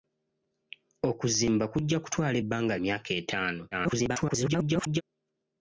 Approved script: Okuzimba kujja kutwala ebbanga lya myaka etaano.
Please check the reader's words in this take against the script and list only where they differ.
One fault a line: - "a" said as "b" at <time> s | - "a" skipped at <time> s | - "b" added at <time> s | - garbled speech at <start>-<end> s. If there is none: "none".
- "lya" skipped at 2.7 s
- garbled speech at 3.7-5.0 s